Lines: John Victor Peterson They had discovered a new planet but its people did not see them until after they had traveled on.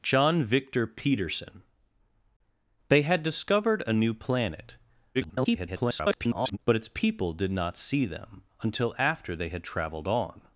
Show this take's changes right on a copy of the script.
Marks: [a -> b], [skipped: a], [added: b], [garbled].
John Victor Peterson They had discovered a new planet [garbled] but its people did not see them until after they had traveled on.